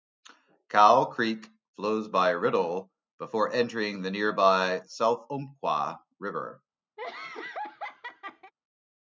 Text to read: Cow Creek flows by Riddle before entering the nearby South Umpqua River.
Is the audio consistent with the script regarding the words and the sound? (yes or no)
no